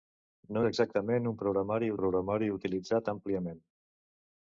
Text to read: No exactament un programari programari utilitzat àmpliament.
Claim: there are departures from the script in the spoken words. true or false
false